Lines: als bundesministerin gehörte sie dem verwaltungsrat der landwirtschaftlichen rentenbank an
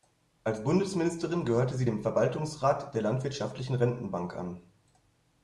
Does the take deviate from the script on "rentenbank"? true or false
false